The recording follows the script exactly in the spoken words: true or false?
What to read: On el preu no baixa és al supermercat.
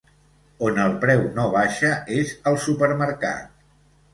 true